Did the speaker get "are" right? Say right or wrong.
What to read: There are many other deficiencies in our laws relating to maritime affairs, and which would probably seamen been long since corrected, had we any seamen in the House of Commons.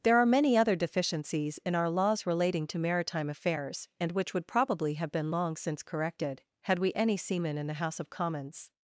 right